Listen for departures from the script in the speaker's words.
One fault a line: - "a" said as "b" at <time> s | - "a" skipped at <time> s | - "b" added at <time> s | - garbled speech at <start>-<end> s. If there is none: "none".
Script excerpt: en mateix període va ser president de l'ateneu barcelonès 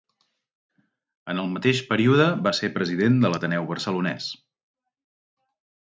- "el" added at 1.4 s